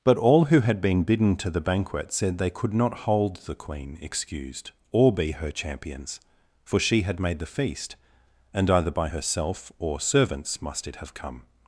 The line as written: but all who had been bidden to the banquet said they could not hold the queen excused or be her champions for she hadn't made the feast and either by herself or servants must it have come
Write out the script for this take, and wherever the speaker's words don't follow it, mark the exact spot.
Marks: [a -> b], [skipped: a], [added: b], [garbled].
but all who had been bidden to the banquet said they could not hold the queen excused or be her champions for she [hadn't -> had] made the feast and either by herself or servants must it have come